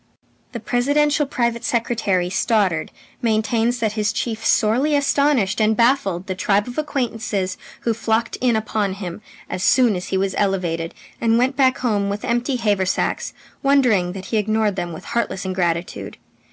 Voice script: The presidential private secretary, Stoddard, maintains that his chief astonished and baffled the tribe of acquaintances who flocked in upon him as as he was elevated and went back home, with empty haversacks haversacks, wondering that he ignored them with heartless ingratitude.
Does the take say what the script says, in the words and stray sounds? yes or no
no